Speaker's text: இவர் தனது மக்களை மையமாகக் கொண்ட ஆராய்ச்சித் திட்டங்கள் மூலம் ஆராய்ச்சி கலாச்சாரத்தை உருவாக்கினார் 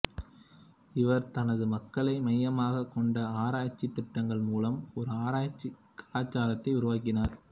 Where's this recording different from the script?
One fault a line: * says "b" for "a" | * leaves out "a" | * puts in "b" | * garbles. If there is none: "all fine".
* puts in "ஒரு"